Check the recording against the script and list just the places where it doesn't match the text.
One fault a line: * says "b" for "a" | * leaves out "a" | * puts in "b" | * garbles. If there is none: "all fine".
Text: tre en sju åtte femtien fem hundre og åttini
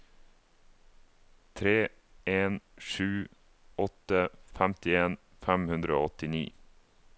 all fine